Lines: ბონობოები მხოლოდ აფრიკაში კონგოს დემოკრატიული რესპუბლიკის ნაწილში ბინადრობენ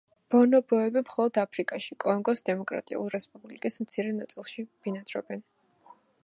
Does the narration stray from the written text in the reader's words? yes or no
yes